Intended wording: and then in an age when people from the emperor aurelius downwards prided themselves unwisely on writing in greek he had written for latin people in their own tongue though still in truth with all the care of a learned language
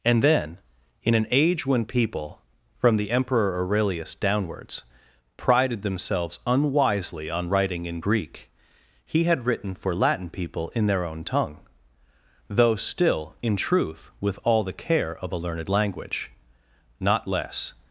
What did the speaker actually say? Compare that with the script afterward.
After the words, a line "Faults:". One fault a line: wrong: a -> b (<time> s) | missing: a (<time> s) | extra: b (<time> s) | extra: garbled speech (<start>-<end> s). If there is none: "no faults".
and then in an age when people from the emperor aurelius downwards prided themselves unwisely on writing in greek he had written for latin people in their own tongue though still in truth with all the care of a learned language not less
Faults:
extra: not less (17.0 s)